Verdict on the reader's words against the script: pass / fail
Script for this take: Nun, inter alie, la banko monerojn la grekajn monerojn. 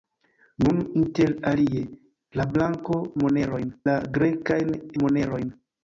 pass